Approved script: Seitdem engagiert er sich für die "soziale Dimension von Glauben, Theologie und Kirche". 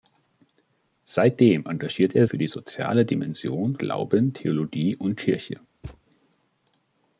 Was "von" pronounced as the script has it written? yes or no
no